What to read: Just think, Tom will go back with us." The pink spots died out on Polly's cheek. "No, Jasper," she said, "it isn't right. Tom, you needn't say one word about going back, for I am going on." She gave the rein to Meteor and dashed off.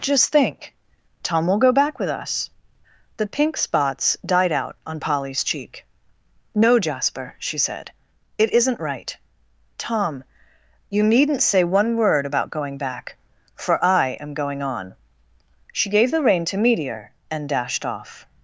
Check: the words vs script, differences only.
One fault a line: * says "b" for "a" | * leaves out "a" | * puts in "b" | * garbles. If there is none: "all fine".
all fine